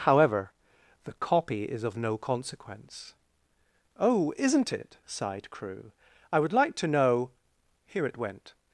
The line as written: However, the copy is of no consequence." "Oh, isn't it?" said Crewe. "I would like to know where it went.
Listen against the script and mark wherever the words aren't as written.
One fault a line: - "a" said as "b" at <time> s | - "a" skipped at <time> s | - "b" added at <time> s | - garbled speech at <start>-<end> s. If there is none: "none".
- "said" said as "sighed" at 5.1 s
- "where" said as "here" at 7.9 s